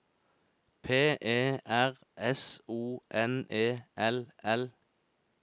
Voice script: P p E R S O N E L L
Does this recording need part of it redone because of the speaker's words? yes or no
yes